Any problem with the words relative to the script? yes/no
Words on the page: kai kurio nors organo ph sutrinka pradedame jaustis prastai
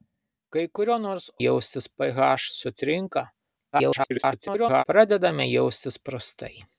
yes